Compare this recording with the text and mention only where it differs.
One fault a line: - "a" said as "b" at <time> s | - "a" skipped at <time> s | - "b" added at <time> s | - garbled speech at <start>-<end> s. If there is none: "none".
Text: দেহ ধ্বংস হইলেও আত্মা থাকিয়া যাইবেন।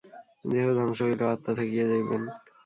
none